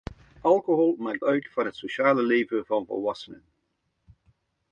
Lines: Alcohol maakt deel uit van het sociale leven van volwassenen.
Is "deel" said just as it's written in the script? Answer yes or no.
no